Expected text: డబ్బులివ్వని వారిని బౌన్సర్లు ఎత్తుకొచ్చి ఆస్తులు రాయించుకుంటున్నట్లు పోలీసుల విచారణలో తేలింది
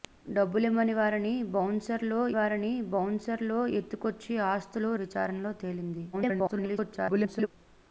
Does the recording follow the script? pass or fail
fail